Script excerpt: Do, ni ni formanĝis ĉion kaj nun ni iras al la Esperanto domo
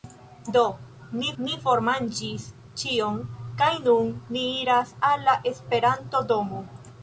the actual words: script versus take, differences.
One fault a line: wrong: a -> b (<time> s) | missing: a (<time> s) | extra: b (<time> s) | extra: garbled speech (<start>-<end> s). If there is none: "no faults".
no faults